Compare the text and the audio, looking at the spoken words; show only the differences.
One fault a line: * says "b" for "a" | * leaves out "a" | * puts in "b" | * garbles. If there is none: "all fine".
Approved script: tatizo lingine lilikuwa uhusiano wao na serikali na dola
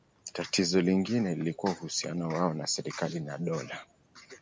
all fine